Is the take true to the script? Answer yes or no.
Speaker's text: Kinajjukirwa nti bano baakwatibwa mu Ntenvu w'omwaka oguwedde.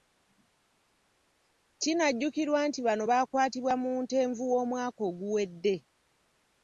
yes